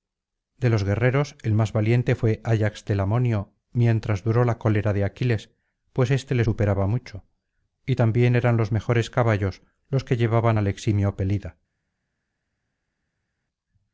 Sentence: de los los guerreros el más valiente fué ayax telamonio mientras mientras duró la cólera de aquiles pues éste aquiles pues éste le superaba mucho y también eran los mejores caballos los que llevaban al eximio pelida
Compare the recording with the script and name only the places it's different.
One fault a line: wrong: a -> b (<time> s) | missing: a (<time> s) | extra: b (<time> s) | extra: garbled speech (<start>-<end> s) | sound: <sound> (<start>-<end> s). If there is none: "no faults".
missing: los (0.8 s)
missing: mientras (4.2 s)
missing: aquiles pues éste (6.3 s)